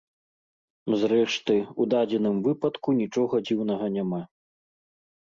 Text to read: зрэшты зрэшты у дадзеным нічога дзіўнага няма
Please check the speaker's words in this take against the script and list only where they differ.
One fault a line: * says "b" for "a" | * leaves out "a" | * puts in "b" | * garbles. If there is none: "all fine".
* leaves out "зрэшты"
* puts in "выпадку"